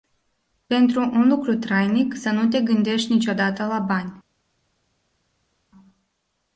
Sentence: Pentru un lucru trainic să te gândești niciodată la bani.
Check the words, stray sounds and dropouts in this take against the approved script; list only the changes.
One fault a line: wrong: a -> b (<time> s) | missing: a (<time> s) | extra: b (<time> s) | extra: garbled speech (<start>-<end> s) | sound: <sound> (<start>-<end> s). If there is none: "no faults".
extra: nu (2.3 s)